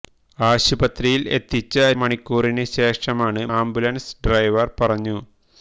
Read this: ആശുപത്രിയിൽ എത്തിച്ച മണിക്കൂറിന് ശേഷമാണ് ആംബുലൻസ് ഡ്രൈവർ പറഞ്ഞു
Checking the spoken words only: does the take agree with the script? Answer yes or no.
yes